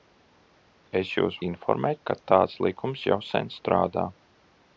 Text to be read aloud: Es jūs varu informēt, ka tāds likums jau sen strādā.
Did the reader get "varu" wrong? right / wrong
wrong